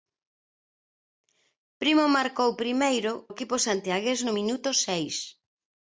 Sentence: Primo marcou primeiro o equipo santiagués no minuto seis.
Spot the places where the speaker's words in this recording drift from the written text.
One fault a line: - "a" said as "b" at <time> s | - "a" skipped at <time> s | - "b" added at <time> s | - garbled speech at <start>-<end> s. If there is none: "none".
none